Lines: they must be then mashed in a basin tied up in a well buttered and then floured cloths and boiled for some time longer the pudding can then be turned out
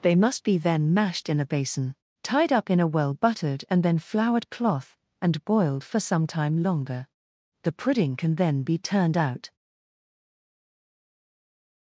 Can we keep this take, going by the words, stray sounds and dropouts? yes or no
no